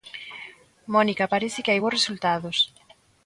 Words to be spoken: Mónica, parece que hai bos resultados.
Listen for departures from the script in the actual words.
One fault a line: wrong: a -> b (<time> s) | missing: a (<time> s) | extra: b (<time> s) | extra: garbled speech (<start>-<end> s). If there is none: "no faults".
no faults